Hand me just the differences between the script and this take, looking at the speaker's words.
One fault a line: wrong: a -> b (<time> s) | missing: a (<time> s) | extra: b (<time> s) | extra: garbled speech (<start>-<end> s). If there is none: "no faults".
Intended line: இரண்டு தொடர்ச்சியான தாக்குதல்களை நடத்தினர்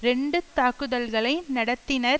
missing: தொடர்ச்சியான (0.4 s)